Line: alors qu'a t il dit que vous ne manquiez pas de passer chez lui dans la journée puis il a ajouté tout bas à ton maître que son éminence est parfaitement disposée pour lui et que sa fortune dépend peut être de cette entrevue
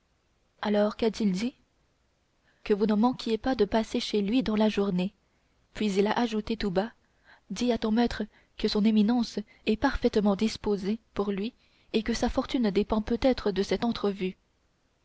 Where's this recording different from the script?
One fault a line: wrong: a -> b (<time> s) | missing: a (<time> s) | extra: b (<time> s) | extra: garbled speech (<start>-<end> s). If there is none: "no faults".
extra: dis (7.5 s)